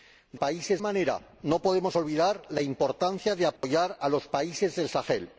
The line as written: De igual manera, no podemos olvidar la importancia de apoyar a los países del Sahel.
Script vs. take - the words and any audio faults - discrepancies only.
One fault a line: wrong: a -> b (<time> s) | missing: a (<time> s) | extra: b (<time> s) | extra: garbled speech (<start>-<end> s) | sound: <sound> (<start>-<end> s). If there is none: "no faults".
wrong: igual -> países (0.3 s)
sound: dropout (3.6-3.6 s)